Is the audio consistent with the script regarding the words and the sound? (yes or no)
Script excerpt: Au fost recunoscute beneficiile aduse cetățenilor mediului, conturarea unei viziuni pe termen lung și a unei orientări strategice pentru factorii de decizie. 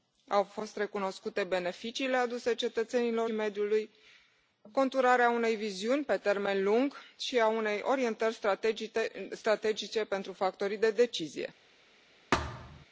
no